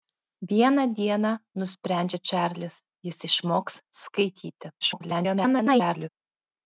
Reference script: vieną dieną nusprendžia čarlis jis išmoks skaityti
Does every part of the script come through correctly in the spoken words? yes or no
no